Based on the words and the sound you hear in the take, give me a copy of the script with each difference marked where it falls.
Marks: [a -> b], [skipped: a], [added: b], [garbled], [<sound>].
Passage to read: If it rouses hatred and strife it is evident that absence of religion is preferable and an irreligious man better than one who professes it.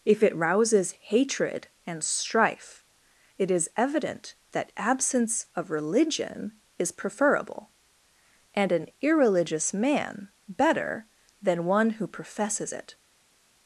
If it rouses hatred and strife it is evident that absence of religion is preferable and an irreligious man better than one who professes it.